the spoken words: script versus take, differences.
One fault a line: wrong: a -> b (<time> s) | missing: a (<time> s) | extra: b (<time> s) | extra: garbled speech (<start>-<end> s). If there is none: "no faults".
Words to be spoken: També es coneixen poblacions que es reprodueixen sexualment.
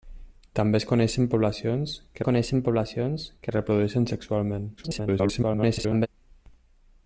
extra: coneixen poblacions que (2.3 s)
extra: garbled speech (4.8-6.1 s)